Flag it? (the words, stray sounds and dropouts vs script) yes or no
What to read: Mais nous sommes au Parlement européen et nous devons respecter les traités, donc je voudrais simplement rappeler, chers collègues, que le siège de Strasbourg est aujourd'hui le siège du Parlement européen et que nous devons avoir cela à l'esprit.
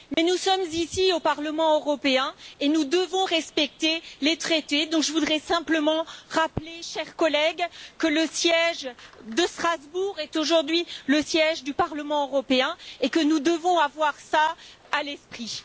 yes